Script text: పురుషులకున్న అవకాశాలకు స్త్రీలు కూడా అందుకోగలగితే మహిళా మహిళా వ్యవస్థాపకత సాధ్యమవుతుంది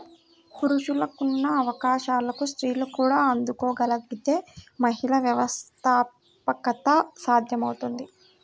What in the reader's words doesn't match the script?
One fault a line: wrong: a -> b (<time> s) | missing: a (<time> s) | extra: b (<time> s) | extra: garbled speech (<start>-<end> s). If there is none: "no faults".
missing: మహిళా (5.2 s)